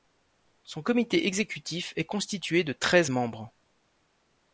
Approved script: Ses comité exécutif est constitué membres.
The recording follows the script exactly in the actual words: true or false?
false